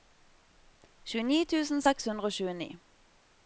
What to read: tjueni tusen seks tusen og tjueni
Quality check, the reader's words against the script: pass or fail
fail